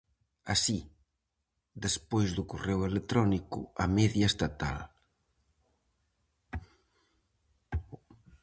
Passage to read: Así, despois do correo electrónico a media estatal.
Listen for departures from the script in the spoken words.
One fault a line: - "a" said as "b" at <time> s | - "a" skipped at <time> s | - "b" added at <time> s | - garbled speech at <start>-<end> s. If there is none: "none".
none